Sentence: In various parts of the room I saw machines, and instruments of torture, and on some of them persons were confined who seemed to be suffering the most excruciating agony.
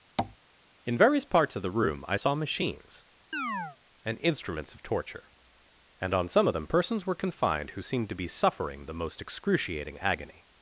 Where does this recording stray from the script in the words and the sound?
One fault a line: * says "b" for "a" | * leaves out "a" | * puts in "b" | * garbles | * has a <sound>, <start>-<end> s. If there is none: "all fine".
* has a tap, 0.2-0.4 s
* has a chirp, 3.3-3.8 s